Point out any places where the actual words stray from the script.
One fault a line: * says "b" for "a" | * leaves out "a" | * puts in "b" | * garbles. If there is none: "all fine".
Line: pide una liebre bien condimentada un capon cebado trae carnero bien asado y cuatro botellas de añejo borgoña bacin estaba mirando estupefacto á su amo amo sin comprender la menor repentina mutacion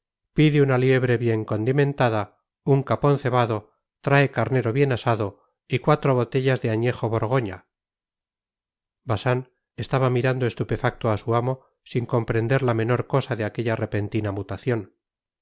* leaves out "amo"
* puts in "cosa de aquella"